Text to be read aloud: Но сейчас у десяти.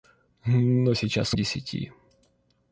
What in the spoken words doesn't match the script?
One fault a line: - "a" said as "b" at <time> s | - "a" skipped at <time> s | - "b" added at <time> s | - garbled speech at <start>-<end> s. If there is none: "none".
none